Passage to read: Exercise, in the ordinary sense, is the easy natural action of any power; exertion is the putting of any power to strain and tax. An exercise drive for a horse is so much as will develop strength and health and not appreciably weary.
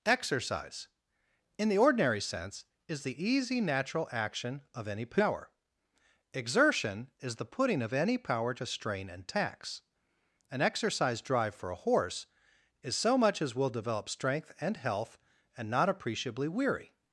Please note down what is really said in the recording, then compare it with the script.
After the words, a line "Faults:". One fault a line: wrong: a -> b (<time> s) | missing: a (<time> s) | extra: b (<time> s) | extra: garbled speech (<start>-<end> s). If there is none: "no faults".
Exercise, in the ordinary sense, is the easy natural action of any power; exertion is the putting of any power to strain and tax. An exercise drive for a horse is so much as will develop strength and health and not appreciably weary.
Faults:
no faults